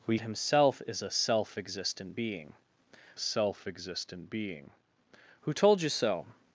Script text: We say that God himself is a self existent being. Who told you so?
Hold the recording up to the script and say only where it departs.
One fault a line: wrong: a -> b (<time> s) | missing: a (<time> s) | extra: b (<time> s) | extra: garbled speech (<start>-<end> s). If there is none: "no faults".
wrong: say that God himself is a -> himself is a self existent being (0.2 s)